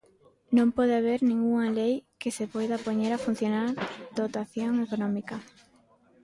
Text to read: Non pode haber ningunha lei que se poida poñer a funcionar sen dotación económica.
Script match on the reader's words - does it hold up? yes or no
no